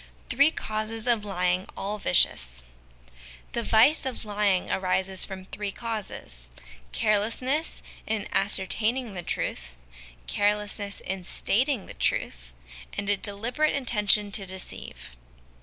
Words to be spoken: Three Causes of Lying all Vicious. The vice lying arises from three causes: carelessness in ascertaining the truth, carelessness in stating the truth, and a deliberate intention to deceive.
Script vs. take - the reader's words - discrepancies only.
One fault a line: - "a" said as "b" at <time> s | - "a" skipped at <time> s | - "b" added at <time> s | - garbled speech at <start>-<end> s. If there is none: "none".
- "of" added at 4.0 s